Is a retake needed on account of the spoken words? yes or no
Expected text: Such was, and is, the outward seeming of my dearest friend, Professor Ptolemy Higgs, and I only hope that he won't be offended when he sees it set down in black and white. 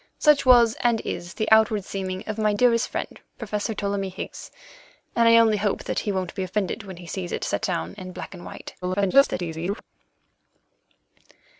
yes